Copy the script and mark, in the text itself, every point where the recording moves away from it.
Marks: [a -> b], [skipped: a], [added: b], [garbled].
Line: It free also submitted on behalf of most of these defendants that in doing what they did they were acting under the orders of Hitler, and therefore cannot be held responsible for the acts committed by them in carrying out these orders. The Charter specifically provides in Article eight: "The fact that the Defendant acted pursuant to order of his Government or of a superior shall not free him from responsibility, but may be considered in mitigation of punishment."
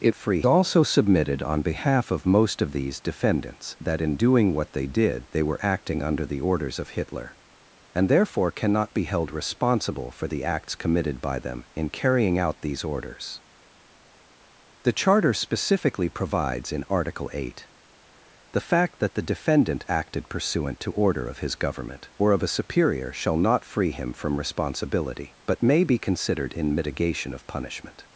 It free also submitted on behalf of most of these defendants that in doing what they did they were acting under the orders of Hitler, and therefore cannot be held responsible for the acts committed by them in carrying out these orders. The Charter specifically provides in Article eight: "The fact that the Defendant acted pursuant to order of his Government or of a superior shall not free him from responsibility, but may be considered in mitigation of punishment."